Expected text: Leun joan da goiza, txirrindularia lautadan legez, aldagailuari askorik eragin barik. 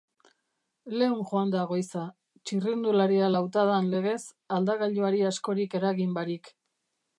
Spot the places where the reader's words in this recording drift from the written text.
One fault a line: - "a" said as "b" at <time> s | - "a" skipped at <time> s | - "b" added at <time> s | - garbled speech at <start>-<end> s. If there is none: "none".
none